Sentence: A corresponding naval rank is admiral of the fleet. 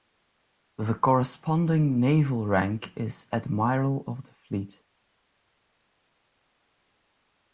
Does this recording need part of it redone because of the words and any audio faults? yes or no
yes